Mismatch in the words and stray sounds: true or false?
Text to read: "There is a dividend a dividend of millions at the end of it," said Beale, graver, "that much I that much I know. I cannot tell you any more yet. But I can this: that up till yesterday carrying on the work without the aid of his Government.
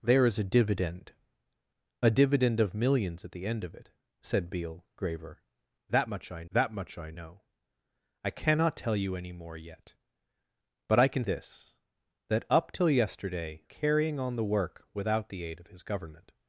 false